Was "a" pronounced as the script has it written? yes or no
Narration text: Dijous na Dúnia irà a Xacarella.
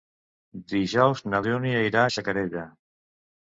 yes